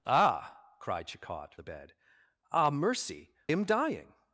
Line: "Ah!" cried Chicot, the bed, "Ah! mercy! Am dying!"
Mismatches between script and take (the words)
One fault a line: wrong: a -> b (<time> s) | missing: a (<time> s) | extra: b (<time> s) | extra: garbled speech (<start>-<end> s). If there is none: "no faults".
no faults